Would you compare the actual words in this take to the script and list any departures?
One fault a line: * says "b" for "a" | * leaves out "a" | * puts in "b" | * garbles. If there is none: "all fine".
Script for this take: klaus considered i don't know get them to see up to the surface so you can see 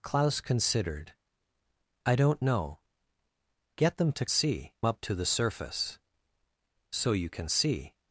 all fine